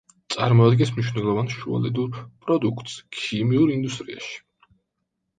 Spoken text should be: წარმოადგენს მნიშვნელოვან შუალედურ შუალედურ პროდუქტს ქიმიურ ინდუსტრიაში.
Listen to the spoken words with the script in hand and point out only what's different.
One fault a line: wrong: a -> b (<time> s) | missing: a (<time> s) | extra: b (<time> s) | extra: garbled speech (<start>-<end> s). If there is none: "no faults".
missing: შუალედურ (2.2 s)